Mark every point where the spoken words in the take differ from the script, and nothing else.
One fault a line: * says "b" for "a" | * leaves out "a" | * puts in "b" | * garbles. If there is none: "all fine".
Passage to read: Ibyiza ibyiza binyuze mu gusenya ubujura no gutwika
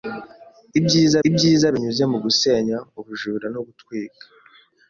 all fine